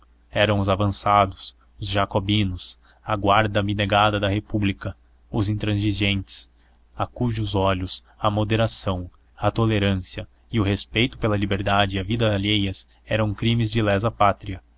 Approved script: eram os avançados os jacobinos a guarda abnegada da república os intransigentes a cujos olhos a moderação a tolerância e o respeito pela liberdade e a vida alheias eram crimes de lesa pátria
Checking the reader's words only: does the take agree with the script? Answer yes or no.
yes